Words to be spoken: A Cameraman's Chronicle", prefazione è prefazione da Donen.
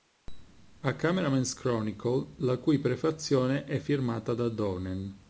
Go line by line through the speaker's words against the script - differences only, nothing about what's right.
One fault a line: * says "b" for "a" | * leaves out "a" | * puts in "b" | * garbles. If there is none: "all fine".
* puts in "la cui"
* says "firmata" for "prefazione"